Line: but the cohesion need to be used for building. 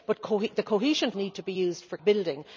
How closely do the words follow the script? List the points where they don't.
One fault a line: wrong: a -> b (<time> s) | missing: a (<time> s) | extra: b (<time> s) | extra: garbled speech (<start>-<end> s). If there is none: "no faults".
no faults